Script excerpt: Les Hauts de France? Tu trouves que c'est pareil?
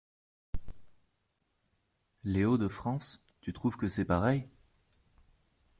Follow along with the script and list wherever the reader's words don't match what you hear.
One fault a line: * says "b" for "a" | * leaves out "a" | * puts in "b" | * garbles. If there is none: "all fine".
all fine